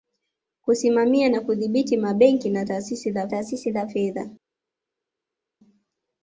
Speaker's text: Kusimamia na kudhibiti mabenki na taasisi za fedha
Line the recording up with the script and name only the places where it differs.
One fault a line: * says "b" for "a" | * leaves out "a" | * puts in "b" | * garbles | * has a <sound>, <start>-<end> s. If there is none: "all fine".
* puts in "taasisi za"